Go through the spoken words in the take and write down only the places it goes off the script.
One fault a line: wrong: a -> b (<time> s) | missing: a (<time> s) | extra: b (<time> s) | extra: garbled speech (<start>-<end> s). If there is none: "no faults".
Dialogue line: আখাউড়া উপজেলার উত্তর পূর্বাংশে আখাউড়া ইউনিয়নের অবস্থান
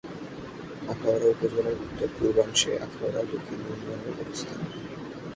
extra: দক্ষিণ (3.3 s)